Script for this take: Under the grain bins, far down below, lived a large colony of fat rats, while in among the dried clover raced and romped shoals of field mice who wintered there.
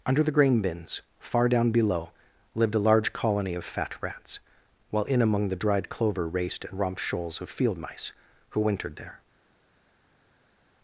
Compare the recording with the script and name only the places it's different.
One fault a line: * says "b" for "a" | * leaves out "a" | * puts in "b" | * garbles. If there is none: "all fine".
all fine